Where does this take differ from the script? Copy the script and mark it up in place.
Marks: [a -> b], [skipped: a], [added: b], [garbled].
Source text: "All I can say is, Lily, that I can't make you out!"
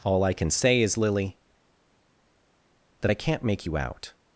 "All I can say is, Lily, that I can't make you out!"